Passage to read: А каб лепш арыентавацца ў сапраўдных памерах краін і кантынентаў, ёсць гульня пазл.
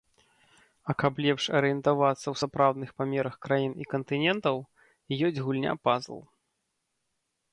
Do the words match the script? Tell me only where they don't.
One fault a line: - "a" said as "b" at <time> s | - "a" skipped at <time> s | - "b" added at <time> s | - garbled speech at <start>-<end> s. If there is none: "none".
none